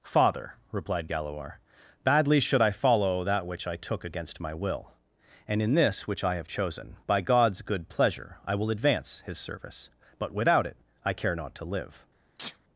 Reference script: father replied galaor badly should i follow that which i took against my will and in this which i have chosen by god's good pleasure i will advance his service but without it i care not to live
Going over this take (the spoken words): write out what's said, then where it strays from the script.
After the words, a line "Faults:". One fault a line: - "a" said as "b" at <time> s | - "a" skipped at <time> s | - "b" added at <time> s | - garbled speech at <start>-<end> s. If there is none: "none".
father replied galaor badly should i follow that which i took against my will and in this which i have chosen by god's good pleasure i will advance his service but without it i care not to live
Faults:
none